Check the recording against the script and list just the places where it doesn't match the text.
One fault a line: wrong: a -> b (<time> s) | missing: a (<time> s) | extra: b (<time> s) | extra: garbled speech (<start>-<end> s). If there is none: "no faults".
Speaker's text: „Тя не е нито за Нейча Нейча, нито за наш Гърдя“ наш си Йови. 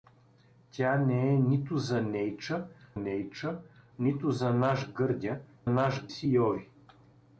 no faults